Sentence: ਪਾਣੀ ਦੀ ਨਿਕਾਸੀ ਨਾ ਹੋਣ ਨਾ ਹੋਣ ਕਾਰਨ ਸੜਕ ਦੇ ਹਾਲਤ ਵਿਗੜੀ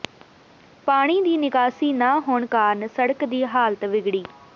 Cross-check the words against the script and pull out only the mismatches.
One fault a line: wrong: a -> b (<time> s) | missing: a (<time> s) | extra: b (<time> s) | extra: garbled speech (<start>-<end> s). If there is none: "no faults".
missing: ਨਾ ਹੋਣ (2.5 s)
wrong: ਦੇ -> ਦੀ (3.2 s)